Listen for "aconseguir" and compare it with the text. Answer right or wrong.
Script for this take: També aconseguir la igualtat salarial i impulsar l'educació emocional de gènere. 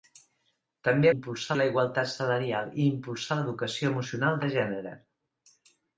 wrong